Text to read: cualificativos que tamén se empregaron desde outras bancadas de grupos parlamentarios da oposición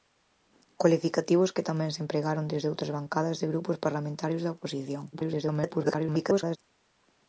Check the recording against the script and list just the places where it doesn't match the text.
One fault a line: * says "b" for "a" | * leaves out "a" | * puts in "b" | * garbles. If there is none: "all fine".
* garbles